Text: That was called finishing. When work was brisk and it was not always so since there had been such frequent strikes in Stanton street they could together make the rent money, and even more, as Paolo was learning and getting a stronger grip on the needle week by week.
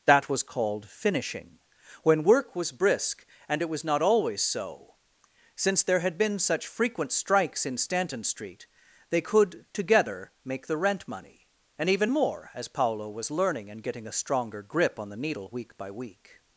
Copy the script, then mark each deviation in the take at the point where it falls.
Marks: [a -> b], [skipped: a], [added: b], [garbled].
That was called finishing. When work was brisk and it was not always so since there had been such frequent strikes in Stanton street they could together make the rent money, and even more, as Paolo was learning and getting a stronger grip on the needle week by week.